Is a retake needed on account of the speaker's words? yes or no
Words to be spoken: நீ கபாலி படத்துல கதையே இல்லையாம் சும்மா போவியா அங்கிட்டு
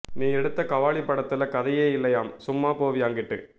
yes